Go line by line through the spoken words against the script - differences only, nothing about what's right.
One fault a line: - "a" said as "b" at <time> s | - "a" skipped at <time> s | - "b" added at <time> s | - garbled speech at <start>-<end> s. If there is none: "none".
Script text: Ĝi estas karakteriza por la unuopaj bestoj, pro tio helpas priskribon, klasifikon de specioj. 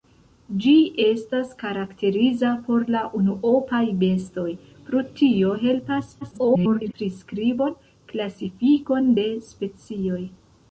- garbled speech at 6.2-6.9 s